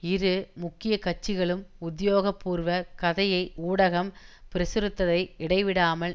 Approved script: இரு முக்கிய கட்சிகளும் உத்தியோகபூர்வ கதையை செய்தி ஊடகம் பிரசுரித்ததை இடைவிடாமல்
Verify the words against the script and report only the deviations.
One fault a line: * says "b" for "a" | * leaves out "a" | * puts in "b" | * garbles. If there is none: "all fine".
* leaves out "செய்தி"